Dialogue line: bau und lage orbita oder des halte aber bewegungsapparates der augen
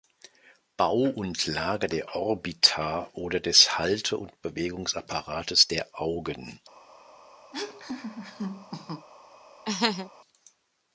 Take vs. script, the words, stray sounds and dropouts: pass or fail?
fail